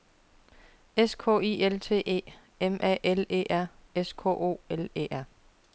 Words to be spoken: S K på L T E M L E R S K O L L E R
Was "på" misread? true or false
true